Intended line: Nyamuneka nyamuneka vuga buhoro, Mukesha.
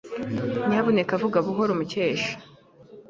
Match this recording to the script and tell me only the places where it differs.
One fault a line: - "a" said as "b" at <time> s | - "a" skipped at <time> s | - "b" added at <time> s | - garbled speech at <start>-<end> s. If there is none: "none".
- "nyamuneka" skipped at 1.1 s